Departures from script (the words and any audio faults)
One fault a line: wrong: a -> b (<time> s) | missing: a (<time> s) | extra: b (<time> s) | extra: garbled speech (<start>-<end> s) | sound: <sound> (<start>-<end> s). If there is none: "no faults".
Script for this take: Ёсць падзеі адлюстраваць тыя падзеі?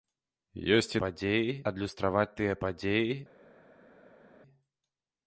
no faults